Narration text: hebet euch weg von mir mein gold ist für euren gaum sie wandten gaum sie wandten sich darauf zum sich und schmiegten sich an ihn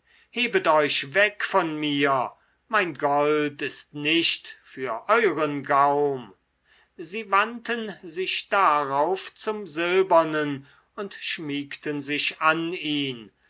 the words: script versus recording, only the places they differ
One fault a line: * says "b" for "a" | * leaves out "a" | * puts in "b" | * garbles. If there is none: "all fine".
* puts in "nicht"
* leaves out "gaum sie wandten"
* says "silbernen" for "sich"